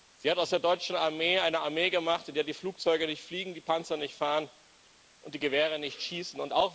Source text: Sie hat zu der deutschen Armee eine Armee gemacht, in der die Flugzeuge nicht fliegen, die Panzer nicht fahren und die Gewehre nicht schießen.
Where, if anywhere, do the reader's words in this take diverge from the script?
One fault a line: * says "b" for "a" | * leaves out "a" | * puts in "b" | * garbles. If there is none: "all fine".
* says "aus" for "zu"